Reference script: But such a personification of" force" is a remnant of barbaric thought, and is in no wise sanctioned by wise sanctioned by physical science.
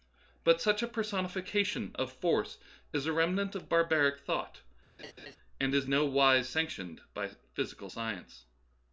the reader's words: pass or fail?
fail